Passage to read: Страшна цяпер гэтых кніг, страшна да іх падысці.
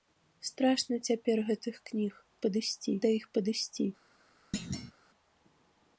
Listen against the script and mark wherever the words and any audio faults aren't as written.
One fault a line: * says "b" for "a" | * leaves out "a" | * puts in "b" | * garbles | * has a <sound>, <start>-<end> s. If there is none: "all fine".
* says "падысці" for "страшна"
* has a thud, 4.5-4.9 s